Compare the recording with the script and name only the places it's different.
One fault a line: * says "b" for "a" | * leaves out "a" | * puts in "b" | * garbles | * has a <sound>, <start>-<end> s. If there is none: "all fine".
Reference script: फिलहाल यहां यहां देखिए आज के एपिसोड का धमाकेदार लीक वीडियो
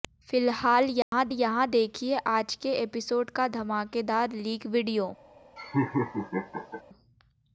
* has a dropout, 1.0-1.1 s
* has a laugh, 5.6-6.8 s